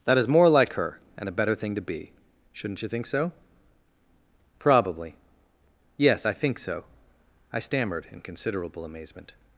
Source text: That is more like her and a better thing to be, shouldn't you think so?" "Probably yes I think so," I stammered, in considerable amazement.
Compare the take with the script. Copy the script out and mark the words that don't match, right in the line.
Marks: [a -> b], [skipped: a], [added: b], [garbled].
That is more like her and a better thing to be, shouldn't you think so?" "Probably yes I think so," I stammered, in considerable amazement.